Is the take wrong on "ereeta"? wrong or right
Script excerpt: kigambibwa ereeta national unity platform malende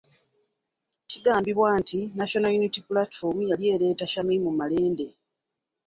wrong